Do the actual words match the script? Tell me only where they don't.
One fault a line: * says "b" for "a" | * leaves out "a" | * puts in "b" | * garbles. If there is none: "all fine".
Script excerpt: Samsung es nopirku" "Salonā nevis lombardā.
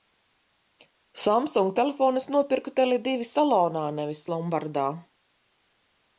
* puts in "telefonu"
* puts in "Tele divi"